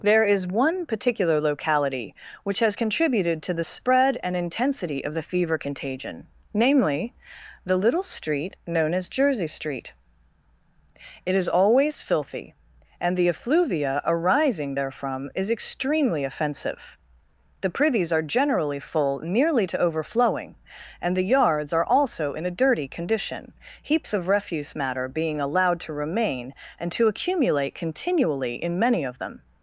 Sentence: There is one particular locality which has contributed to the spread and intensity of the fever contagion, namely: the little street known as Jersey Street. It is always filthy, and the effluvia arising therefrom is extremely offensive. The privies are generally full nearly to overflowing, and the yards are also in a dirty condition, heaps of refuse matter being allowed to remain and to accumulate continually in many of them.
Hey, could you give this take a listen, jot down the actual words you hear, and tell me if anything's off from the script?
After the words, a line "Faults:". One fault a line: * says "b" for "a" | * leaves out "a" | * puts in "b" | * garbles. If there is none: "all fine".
There is one particular locality which has contributed to the spread and intensity of the fever contagion, namely: the little street known as Jersey Street. It is always filthy, and the effluvia arising therefrom is extremely offensive. The privies are generally full nearly to overflowing, and the yards are also in a dirty condition, heaps of refuse matter being allowed to remain and to accumulate continually in many of them.
Faults:
all fine